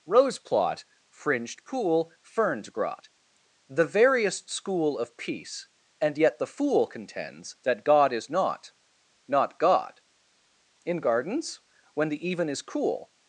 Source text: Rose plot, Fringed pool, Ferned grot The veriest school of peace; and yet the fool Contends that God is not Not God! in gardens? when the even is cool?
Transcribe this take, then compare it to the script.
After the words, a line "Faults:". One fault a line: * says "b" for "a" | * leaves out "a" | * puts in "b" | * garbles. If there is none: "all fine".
Rose plot, Fringed pool, Ferned grot The veriest school of peace; and yet the fool Contends that God is not Not God! in gardens? when the even is cool?
Faults:
all fine